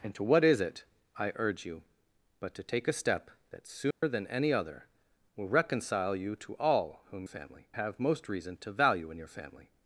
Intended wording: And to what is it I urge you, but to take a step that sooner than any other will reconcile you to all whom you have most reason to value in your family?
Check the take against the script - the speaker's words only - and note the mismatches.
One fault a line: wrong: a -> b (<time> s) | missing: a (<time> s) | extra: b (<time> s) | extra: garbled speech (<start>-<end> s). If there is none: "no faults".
wrong: you -> family (7.2 s)